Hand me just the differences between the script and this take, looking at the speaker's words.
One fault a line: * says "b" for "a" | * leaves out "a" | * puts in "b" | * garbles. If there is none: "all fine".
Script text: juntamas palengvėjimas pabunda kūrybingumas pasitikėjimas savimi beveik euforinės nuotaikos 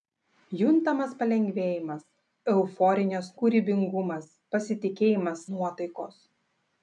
* says "euforinės" for "pabunda"
* leaves out "savimi beveik euforinės"